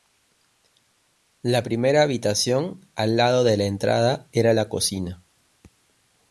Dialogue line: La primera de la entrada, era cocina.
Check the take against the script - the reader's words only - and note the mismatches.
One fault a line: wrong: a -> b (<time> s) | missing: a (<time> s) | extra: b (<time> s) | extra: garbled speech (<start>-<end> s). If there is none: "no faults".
extra: habitación al lado (2.0 s)
extra: la (4.5 s)